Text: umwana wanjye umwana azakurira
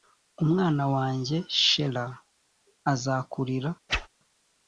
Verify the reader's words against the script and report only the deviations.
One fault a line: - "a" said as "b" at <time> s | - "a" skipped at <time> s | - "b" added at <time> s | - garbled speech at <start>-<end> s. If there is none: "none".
- "umwana" said as "shela" at 1.6 s